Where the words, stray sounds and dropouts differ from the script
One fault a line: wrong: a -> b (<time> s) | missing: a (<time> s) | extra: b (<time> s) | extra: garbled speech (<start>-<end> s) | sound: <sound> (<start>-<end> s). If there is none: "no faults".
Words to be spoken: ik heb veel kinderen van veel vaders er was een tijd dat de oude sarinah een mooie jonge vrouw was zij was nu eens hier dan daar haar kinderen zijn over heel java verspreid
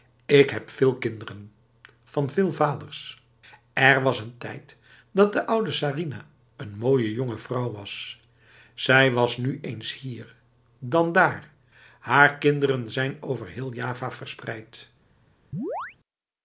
sound: chirp (15.5-16.0 s)